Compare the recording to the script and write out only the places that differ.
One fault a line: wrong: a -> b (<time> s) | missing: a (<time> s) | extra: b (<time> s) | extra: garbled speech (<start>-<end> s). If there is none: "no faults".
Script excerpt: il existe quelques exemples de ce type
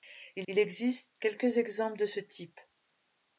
extra: il (0.5 s)